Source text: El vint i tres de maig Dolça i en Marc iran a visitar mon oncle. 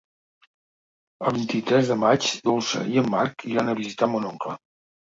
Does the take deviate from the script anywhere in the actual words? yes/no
no